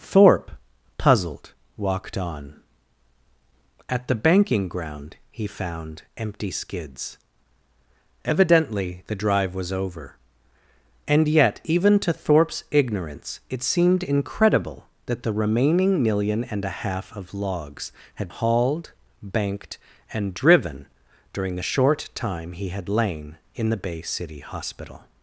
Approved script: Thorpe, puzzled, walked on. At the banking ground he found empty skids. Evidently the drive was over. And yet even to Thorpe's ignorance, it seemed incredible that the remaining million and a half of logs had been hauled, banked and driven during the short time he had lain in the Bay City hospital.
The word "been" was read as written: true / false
false